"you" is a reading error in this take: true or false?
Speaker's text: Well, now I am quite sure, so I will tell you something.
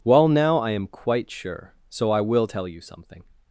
false